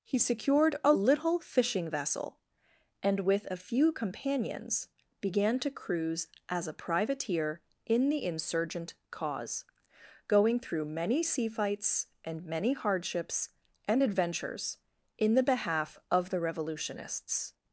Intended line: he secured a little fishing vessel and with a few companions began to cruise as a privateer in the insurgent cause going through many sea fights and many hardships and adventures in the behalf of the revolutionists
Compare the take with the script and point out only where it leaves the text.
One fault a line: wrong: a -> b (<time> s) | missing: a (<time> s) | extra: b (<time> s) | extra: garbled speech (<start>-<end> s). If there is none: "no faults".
no faults